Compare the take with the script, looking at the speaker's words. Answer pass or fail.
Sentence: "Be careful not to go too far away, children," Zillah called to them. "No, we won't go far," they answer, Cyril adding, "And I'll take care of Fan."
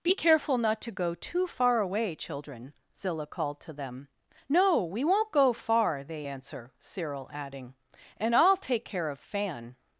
pass